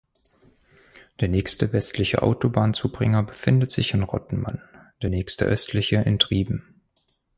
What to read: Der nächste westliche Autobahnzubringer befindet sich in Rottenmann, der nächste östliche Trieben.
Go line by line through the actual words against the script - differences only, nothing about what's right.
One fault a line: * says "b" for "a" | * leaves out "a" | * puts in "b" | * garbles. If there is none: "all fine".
* puts in "in"